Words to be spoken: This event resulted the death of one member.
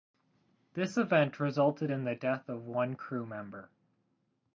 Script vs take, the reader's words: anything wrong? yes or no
yes